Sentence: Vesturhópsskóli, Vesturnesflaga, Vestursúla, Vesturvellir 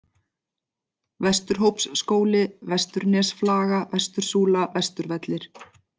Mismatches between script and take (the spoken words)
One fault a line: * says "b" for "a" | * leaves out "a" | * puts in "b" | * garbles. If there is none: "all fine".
all fine